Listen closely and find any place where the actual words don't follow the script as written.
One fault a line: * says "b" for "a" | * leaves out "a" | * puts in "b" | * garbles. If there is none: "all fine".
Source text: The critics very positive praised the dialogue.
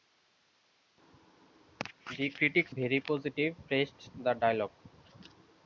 all fine